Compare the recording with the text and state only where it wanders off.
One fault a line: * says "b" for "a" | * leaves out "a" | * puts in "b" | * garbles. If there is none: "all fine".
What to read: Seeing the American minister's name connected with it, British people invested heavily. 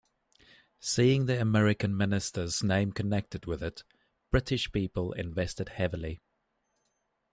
all fine